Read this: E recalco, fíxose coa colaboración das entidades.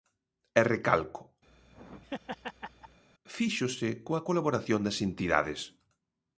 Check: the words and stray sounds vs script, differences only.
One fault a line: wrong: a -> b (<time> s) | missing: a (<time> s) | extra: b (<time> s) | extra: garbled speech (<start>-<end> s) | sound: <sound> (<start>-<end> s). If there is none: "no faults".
sound: laugh (1.5-3.0 s)